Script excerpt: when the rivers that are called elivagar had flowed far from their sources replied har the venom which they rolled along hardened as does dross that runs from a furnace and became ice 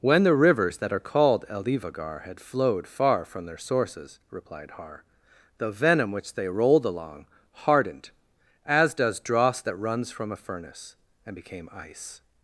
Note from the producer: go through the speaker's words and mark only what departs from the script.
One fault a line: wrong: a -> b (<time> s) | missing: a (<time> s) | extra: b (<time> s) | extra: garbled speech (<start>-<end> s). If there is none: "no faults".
no faults